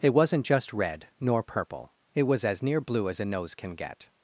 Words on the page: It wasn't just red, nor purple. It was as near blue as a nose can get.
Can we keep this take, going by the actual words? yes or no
yes